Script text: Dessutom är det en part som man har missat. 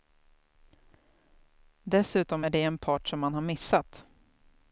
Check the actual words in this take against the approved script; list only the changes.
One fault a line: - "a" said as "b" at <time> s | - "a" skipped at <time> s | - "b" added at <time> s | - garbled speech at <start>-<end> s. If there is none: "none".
none